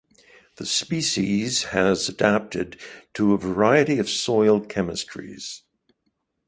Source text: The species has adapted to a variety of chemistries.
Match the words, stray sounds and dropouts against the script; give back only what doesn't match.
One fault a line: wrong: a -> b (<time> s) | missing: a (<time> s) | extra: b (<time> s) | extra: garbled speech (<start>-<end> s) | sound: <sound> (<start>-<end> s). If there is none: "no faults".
extra: soil (4.1 s)